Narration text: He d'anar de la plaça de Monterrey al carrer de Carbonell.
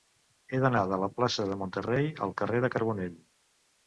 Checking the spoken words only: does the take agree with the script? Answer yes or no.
yes